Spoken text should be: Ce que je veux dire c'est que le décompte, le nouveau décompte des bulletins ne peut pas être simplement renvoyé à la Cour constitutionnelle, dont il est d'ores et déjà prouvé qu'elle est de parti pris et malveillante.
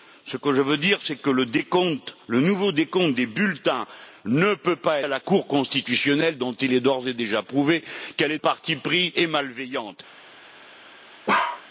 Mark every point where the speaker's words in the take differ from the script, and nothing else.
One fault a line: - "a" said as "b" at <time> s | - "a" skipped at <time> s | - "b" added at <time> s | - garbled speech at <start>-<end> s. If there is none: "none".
- "être simplement renvoyé" skipped at 5.0 s
- "de" skipped at 8.4 s